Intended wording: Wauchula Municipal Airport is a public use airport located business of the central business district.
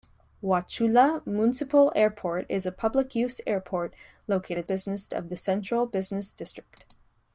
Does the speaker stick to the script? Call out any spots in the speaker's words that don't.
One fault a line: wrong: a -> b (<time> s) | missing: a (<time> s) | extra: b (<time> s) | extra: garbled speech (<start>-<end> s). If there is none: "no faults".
no faults